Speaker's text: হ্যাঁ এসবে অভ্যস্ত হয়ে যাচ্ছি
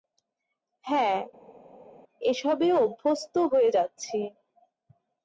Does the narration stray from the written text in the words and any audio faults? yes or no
no